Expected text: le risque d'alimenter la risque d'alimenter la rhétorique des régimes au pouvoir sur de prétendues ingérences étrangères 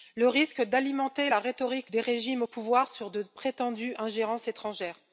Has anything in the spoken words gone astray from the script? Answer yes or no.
yes